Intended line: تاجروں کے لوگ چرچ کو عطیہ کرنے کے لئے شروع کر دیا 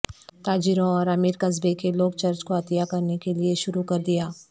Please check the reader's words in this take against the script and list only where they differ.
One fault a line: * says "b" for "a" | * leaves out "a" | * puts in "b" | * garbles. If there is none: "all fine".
* puts in "اور امیر قصبے"